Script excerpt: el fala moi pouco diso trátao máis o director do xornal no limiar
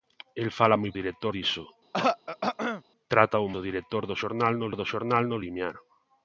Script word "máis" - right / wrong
wrong